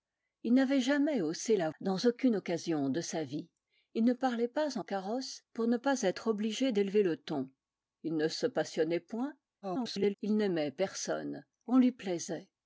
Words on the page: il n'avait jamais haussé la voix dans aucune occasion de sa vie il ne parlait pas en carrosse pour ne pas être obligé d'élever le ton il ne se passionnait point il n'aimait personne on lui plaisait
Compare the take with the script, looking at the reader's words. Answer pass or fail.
fail